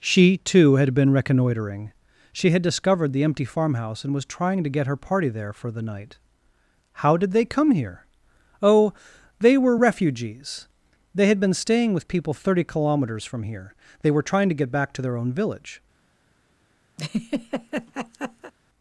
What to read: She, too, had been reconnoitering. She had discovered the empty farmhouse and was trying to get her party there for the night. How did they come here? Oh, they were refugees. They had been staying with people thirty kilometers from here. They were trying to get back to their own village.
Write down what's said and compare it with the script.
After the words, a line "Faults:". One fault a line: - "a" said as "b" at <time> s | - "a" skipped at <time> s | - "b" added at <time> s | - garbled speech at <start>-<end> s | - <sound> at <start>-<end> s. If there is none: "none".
She, too, had been reconnoitering. She had discovered the empty farmhouse and was trying to get her party there for the night. How did they come here? Oh, they were refugees. They had been staying with people thirty kilometers from here. They were trying to get back to their own village.
Faults:
- laugh at 17.0-18.5 s